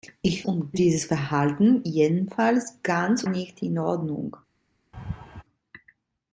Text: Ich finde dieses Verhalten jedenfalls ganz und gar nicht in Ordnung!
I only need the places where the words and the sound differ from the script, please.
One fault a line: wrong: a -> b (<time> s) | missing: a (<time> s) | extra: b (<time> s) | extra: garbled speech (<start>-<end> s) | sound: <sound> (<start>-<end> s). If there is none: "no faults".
wrong: finde -> und (0.4 s)
missing: und gar (3.2 s)
sound: laugh (4.9-5.4 s)